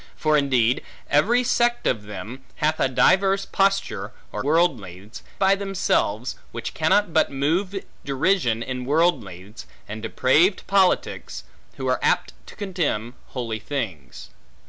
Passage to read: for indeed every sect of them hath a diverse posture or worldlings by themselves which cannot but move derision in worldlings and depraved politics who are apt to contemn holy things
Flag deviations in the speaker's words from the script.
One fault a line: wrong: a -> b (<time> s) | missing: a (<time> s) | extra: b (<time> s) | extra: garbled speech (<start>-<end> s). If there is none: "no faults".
no faults